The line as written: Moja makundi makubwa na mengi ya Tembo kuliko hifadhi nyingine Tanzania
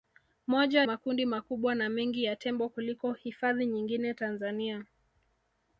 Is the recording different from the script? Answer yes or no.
no